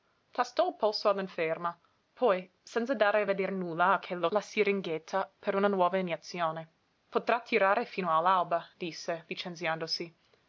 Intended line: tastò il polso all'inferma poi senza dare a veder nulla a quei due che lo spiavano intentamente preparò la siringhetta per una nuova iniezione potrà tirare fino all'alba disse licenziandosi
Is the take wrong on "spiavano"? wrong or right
wrong